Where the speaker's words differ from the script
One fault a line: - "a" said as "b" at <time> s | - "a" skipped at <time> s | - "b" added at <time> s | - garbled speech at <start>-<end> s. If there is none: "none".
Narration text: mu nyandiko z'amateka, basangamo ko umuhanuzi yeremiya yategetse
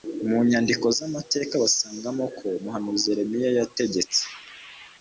none